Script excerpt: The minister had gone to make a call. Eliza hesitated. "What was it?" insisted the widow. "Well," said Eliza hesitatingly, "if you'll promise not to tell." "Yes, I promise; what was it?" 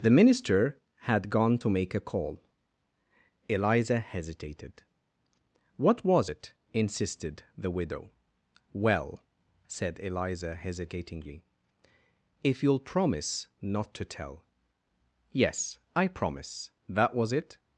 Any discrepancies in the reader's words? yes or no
yes